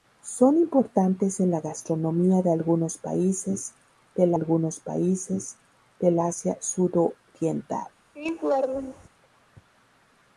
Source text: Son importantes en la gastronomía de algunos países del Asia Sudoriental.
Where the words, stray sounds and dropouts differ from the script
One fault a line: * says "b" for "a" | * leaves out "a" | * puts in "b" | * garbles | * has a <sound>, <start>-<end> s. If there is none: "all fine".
* puts in "algunos países del"
* has a laugh, 8.2-9.1 s